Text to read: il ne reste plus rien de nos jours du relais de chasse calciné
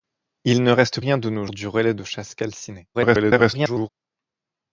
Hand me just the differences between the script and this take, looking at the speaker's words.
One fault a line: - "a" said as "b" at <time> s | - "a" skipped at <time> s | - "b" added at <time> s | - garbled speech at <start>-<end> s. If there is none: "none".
- "plus" skipped at 1.0 s
- "jours" skipped at 1.5 s
- garbled speech at 2.9-3.9 s